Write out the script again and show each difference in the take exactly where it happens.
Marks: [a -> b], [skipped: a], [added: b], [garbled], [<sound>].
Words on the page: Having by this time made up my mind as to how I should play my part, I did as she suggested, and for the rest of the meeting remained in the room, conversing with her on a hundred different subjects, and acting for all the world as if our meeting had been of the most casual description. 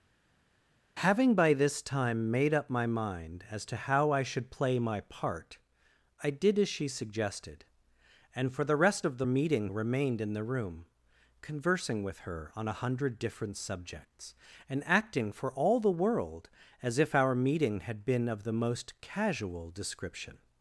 Having by this time made up my mind as to how I should play my part, I did as she suggested, and for the rest of the meeting remained in the room, conversing with her on a hundred different subjects, and acting for all the world as if our meeting had been of the most casual description.